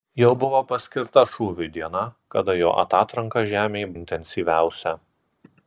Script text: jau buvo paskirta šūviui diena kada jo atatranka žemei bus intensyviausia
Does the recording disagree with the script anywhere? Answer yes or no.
yes